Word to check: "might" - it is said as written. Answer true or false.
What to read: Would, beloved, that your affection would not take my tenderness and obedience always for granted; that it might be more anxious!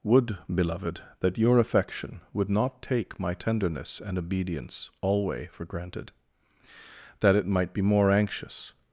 true